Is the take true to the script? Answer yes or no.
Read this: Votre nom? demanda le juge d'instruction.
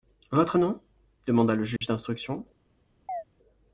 yes